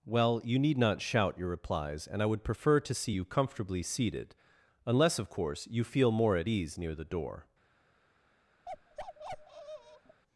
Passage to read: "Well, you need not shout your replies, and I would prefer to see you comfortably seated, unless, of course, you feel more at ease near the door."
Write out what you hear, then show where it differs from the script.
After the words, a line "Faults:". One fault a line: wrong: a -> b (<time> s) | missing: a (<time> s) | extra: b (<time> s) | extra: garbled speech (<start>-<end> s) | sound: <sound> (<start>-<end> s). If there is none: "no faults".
"Well, you need not shout your replies, and I would prefer to see you comfortably seated, unless, of course, you feel more at ease near the door."
Faults:
sound: bark (8.7-10.2 s)